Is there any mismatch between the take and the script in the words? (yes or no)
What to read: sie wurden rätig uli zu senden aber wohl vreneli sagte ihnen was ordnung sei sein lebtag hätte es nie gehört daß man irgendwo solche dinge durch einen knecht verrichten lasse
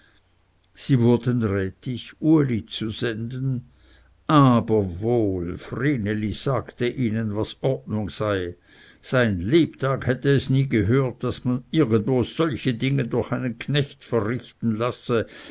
no